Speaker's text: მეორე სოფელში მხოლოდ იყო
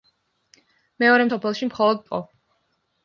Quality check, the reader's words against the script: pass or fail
pass